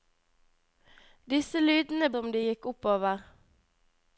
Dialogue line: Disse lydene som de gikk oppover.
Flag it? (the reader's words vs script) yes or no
no